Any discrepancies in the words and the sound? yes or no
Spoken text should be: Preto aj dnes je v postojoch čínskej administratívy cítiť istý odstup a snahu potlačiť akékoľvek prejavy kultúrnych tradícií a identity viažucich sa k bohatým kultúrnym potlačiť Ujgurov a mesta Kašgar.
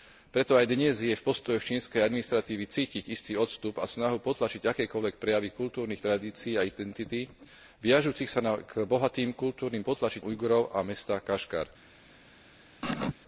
yes